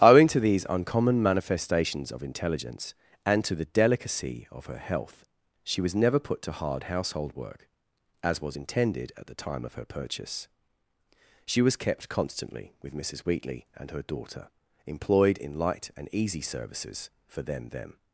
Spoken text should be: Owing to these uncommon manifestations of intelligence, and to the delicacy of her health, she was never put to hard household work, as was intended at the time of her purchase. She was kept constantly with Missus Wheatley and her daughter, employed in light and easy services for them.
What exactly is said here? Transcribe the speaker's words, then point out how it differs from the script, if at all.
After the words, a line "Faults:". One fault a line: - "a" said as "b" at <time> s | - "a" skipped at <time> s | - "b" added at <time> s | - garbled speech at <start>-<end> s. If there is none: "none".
Owing to these uncommon manifestations of intelligence, and to the delicacy of her health, she was never put to hard household work, as was intended at the time of her purchase. She was kept constantly with Missus Wheatley and her daughter, employed in light and easy services for them them.
Faults:
- "them" added at 17.7 s